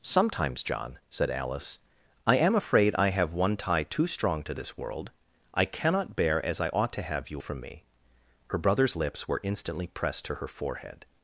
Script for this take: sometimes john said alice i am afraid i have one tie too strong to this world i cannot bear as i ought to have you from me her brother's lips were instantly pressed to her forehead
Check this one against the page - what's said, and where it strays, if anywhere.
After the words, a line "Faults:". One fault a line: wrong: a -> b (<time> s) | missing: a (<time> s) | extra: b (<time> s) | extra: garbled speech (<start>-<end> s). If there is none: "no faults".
sometimes john said alice i am afraid i have one tie too strong to this world i cannot bear as i ought to have you from me her brother's lips were instantly pressed to her forehead
Faults:
no faults